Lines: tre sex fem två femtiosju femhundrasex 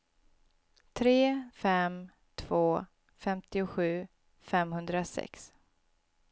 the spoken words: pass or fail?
fail